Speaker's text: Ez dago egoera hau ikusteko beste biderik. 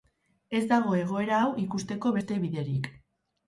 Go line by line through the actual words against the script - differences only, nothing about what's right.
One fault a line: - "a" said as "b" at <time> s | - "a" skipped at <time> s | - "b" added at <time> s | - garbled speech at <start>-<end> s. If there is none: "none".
none